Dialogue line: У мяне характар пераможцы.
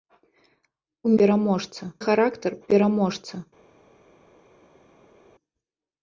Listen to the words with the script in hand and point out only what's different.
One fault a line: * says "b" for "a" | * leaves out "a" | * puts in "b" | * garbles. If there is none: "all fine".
* says "пераможцы" for "мяне"